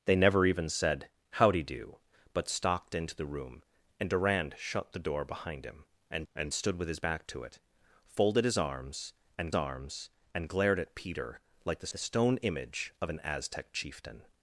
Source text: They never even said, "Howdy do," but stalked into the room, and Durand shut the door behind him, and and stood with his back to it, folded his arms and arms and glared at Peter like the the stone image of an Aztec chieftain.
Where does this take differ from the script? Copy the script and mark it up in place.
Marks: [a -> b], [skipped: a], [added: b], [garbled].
They never even said, "Howdy do," but stalked into the room, and Durand shut the door behind him, and and stood with his back to it, folded his arms and arms and glared at Peter like the the stone image of an Aztec chieftain.